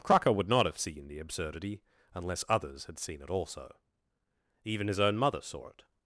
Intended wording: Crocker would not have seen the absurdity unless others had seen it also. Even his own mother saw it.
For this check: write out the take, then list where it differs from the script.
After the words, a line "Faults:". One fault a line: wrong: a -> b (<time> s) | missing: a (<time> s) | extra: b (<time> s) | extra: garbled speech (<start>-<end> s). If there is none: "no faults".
Crocker would not have seen the absurdity unless others had seen it also. Even his own mother saw it.
Faults:
no faults